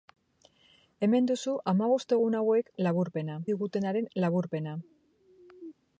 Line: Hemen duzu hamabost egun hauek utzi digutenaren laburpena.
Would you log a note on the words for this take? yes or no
yes